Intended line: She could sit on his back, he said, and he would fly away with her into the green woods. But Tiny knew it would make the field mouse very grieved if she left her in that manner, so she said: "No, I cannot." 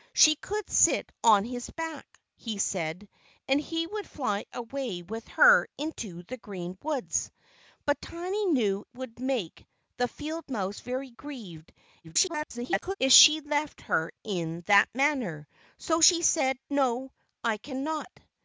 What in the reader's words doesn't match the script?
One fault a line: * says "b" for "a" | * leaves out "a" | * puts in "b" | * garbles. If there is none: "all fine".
* leaves out "it"
* garbles